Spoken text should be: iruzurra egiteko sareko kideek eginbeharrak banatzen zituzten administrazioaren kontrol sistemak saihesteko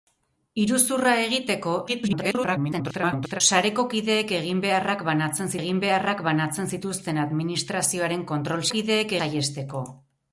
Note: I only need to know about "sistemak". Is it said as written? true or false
false